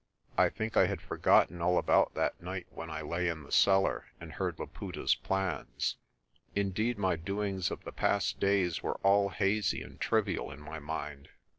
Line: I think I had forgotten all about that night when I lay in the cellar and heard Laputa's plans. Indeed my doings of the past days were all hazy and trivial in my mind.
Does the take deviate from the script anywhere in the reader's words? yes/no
no